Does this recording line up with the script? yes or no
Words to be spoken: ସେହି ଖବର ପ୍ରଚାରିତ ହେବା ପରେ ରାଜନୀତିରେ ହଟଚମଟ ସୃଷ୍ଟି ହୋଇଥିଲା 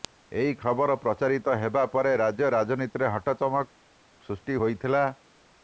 no